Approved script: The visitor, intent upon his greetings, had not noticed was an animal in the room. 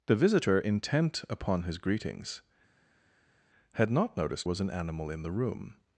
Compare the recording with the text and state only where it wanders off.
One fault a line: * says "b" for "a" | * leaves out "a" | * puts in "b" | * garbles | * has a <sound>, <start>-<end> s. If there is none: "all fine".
all fine